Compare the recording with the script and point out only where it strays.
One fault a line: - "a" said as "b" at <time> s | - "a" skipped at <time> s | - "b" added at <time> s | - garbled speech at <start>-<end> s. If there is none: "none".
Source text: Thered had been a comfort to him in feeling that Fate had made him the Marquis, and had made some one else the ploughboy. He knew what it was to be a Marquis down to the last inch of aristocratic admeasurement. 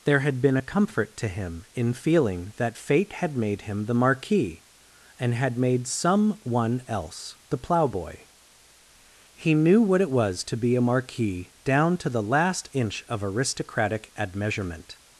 - "Thered" said as "There" at 0.0 s